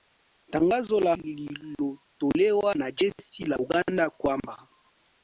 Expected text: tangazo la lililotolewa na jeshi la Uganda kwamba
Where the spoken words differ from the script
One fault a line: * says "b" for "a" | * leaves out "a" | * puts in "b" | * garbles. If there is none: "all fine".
all fine